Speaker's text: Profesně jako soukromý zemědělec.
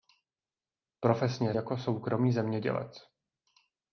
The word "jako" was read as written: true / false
true